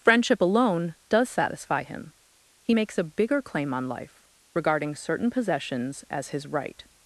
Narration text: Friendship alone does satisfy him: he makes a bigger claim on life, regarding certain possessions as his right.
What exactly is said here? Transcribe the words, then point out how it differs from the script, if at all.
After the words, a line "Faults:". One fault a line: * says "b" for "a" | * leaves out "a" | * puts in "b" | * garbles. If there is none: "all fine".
Friendship alone does satisfy him: he makes a bigger claim on life, regarding certain possessions as his right.
Faults:
all fine